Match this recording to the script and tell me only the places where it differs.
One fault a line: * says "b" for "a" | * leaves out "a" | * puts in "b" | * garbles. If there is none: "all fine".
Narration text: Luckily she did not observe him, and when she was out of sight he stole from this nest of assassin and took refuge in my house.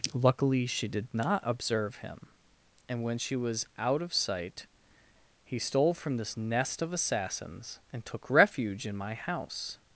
* says "assassins" for "assassin"